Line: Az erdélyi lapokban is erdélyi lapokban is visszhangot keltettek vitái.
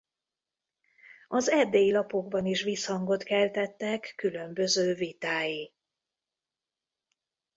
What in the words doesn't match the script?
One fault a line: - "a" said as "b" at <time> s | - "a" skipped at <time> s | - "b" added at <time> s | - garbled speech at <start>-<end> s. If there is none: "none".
- "erdélyi lapokban is" skipped at 2.6 s
- "különböző" added at 4.2 s